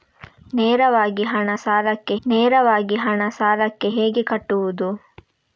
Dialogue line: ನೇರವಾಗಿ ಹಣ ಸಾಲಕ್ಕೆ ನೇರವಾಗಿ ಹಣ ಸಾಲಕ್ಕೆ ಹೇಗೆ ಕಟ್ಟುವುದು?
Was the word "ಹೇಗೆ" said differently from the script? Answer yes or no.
no